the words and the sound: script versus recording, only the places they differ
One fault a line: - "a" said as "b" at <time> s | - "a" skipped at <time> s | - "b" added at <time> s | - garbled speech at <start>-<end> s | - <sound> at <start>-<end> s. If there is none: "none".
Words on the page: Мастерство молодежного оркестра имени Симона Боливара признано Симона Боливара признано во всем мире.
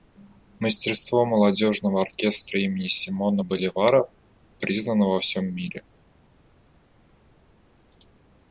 - "Симона Боливара признано" skipped at 5.1 s